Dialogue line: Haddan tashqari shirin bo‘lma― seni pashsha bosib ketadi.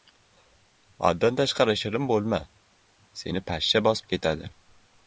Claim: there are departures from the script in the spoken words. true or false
false